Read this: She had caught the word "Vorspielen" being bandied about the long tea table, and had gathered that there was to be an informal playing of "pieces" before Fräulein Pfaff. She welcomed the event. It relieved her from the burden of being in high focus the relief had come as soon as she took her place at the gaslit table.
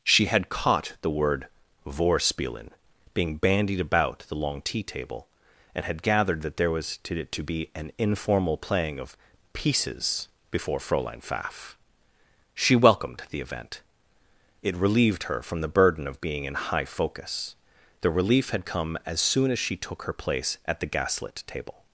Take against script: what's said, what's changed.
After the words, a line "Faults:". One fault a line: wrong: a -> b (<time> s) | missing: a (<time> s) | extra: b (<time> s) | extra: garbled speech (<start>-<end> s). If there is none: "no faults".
She had caught the word "Vorspielen" being bandied about the long tea table, and had gathered that there was to to be an informal playing of "pieces" before Fräulein Pfaff. She welcomed the event. It relieved her from the burden of being in high focus the relief had come as soon as she took her place at the gaslit table.
Faults:
extra: to (7.3 s)